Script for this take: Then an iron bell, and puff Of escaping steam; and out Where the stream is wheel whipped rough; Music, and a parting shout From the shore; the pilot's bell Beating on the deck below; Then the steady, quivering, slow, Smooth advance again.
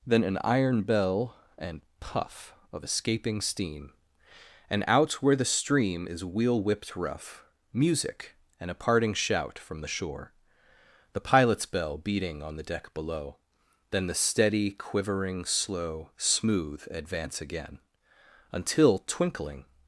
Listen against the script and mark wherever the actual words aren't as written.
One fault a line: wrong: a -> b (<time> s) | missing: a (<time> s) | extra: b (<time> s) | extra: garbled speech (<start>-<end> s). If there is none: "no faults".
extra: Until Twinkling (18.5 s)